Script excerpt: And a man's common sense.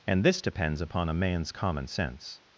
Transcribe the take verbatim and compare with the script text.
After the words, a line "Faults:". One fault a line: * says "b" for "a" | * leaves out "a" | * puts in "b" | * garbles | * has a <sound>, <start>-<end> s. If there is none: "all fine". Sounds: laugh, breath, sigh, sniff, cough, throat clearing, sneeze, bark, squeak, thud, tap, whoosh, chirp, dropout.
And this depends upon a man's common sense.
Faults:
* puts in "this depends upon"